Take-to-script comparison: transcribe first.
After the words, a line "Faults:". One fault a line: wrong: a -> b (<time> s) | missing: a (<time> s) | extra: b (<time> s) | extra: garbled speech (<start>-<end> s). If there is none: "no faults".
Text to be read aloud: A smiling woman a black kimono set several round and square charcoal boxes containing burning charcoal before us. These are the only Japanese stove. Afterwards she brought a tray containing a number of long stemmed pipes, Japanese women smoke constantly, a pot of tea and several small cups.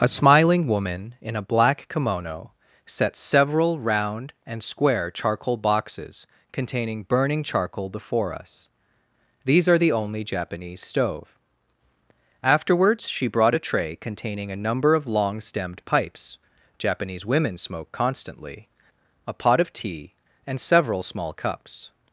A smiling woman in a black kimono set several round and square charcoal boxes containing burning charcoal before us. These are the only Japanese stove. Afterwards she brought a tray containing a number of long stemmed pipes, Japanese women smoke constantly, a pot of tea and several small cups.
Faults:
extra: in (1.2 s)